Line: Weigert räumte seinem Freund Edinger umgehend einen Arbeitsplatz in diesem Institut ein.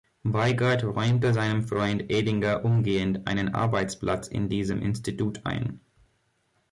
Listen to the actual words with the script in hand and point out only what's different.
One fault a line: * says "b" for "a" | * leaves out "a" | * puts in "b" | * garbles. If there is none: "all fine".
all fine